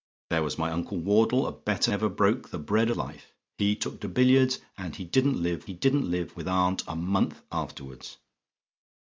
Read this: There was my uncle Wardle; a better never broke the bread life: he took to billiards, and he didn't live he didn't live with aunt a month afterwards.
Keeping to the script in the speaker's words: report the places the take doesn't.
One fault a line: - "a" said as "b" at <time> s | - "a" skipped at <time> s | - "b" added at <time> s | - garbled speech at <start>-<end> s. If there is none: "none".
none